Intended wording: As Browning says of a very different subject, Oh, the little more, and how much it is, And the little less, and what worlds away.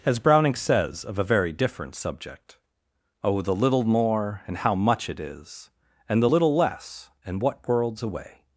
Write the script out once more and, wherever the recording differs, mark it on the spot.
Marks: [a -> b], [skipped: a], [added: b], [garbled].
As Browning says of a very different subject, Oh, the little more, and how much it is, And the little less, and what worlds away.